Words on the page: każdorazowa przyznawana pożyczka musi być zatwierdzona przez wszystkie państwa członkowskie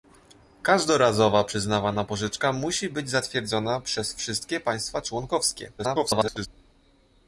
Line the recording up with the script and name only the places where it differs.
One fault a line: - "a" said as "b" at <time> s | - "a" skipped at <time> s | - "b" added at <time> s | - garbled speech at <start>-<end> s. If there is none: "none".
- garbled speech at 5.8-6.5 s